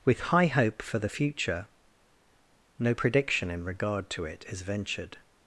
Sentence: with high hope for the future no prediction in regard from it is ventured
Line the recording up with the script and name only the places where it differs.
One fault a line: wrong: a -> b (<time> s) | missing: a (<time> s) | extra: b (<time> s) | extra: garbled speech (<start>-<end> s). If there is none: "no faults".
wrong: from -> to (4.1 s)